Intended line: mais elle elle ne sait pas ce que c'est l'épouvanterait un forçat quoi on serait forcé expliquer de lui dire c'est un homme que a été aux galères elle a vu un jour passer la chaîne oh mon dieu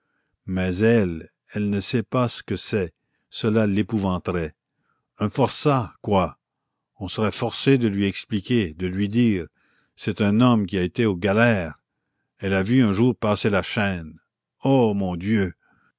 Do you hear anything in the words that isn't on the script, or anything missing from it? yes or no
yes